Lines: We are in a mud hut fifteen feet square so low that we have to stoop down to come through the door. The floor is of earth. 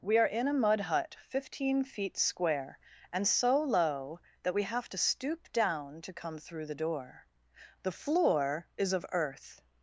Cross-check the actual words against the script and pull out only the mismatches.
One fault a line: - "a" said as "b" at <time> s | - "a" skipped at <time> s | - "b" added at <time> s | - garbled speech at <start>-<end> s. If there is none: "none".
- "and" added at 3.1 s